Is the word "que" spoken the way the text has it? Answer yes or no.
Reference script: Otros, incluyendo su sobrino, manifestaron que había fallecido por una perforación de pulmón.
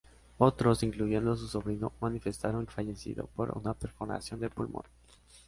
no